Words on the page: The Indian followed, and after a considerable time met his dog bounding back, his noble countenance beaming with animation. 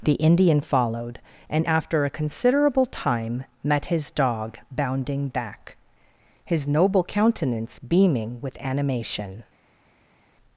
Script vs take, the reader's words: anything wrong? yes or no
no